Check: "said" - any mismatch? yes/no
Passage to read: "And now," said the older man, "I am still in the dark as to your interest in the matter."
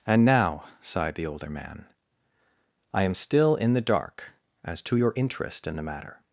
yes